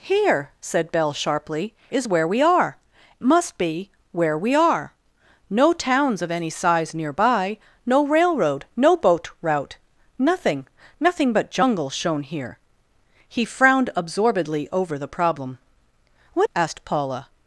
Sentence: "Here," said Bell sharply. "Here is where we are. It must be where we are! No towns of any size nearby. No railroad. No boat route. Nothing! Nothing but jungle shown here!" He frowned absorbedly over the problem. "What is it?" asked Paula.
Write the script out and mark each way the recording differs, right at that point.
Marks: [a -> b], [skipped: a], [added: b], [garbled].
"Here," said Bell sharply. [skipped: "Here] is where we are. [skipped: It] must be where we are! No towns of any size nearby. No railroad. No boat route. Nothing! Nothing but jungle shown here!" He frowned absorbedly over the problem. "What [skipped: is it?"] asked Paula.